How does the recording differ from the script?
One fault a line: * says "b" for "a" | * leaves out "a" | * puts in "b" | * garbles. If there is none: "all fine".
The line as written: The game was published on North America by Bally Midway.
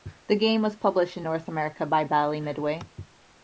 * says "in" for "on"